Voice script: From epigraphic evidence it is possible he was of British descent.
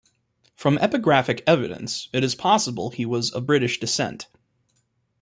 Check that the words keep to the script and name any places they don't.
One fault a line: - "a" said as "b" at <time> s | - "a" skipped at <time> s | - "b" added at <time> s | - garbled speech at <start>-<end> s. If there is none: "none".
none